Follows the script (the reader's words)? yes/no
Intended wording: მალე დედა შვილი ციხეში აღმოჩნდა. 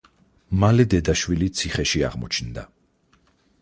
yes